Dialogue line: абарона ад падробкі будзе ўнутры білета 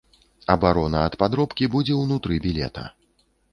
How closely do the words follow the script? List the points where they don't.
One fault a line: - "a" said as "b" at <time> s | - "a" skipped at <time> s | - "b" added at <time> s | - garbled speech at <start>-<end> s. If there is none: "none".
none